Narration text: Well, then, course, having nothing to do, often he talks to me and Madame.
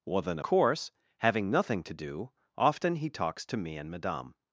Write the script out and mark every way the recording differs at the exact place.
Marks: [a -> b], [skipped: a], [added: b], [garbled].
Well, then, course, having nothing to do, often he talks to me and Madame.